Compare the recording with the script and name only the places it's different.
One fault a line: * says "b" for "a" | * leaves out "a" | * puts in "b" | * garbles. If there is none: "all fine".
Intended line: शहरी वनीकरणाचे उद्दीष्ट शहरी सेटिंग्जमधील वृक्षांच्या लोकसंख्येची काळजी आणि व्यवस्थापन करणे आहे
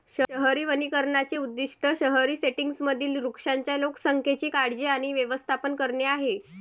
all fine